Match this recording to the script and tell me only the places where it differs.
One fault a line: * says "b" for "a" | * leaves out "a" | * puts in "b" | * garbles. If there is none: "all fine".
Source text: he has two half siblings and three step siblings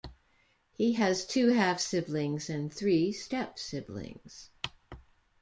all fine